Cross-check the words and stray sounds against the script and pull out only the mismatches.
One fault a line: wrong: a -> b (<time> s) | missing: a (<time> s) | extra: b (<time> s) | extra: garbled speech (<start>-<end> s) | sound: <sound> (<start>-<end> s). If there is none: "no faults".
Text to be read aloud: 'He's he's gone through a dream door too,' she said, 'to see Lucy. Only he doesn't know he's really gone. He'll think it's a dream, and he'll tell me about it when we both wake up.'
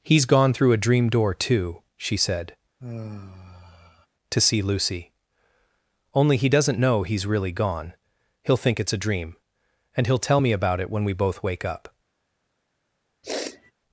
missing: he's (0.2 s)
sound: sigh (2.8-4.1 s)
sound: sniff (13.2-13.7 s)